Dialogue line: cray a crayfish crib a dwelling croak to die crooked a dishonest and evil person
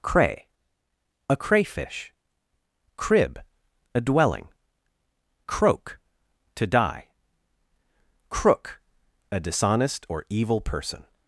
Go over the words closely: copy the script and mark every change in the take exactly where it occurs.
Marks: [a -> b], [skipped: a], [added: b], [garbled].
cray a crayfish crib a dwelling croak to die [crooked -> crook] a dishonest [and -> or] evil person